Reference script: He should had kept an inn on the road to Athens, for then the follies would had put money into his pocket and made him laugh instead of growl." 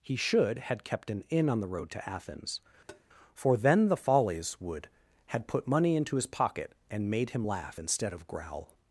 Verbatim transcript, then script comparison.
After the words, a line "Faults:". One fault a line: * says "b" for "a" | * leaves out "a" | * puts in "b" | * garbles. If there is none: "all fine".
He should had kept an inn on the road to Athens, for then the follies would had put money into his pocket and made him laugh instead of growl."
Faults:
all fine